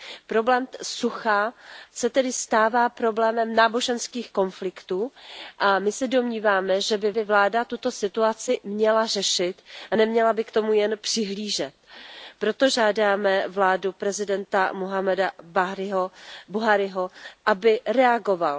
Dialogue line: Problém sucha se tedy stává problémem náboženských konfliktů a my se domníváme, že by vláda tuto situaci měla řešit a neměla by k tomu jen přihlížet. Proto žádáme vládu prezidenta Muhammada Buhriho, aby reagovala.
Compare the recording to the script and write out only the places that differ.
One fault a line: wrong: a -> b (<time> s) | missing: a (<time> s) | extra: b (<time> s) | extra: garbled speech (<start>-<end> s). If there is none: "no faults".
extra: by (7.1 s)